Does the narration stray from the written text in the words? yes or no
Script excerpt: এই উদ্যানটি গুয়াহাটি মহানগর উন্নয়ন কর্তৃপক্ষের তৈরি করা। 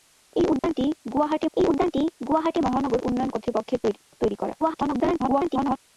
yes